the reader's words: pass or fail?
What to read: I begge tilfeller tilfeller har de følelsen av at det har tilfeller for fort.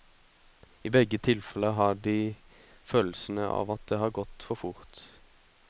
fail